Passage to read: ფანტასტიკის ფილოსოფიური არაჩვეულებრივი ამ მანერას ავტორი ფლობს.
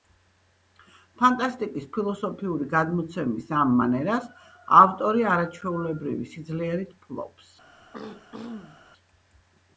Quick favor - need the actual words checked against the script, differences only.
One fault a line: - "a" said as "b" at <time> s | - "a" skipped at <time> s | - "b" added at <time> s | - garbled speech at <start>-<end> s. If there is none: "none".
- "არაჩვეულებრივი" said as "გადმოცემის" at 2.7 s
- "არაჩვეულებრივი სიძლიერით" added at 5.3 s